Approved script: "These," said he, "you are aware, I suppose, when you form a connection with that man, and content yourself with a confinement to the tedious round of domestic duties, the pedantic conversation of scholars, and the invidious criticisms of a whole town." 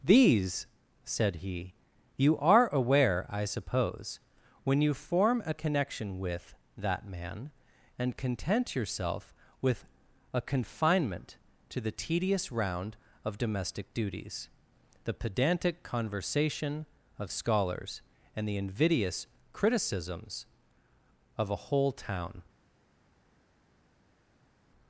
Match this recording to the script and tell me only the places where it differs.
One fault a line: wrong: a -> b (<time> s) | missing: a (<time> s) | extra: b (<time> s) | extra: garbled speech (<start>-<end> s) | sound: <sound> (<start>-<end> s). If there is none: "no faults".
no faults